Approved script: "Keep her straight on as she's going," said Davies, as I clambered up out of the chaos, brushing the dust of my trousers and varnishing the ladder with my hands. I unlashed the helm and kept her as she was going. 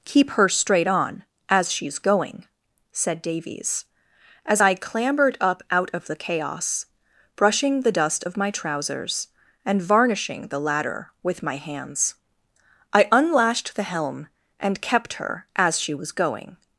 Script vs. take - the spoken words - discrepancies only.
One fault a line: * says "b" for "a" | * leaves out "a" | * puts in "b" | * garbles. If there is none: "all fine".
all fine